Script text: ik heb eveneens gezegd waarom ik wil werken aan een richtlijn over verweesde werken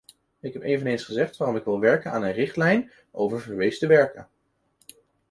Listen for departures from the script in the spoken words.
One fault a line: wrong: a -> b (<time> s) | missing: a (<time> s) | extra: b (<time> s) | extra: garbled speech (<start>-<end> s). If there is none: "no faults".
no faults